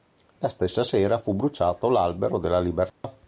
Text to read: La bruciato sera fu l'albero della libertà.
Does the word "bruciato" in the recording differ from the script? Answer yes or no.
yes